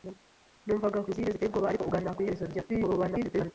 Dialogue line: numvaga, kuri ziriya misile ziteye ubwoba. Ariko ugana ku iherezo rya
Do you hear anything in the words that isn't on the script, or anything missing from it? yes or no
yes